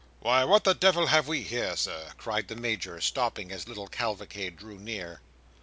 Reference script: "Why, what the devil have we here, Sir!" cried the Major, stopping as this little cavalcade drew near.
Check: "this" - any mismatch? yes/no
yes